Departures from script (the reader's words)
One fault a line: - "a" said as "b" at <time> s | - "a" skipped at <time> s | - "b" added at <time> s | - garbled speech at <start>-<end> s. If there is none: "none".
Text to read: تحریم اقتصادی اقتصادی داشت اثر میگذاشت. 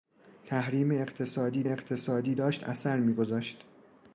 none